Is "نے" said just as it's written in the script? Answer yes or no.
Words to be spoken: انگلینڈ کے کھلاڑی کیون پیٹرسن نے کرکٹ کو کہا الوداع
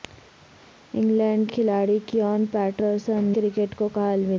no